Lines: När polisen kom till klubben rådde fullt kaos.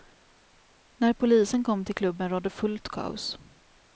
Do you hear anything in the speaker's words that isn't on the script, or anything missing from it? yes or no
no